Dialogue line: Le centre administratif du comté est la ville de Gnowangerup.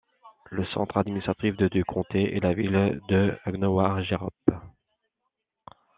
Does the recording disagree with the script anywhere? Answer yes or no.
no